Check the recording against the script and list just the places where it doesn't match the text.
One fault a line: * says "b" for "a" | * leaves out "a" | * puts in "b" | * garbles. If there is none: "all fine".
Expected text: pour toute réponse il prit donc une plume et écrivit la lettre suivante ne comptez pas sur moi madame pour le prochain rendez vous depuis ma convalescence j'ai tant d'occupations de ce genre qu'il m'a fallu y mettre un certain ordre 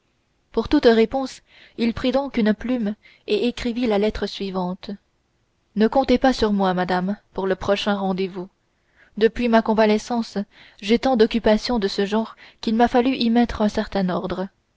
all fine